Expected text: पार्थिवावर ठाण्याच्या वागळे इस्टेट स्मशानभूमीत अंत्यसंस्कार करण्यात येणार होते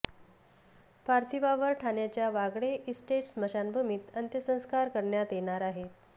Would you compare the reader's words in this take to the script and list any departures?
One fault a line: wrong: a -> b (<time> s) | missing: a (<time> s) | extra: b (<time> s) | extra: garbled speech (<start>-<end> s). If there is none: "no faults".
wrong: होते -> आहेत (5.6 s)